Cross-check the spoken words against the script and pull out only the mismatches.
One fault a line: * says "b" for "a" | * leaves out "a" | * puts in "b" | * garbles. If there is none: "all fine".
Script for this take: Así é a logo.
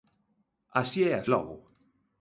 all fine